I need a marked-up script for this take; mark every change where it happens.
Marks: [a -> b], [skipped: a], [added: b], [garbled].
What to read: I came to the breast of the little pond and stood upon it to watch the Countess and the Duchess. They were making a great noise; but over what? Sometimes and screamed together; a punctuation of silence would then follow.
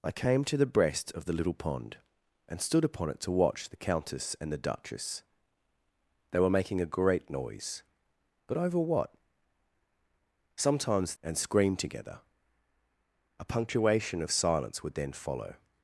I came to the breast of the little pond and stood upon it to watch the Countess and the Duchess. They were making a great noise; but over what? Sometimes and screamed together; a punctuation of silence would then follow.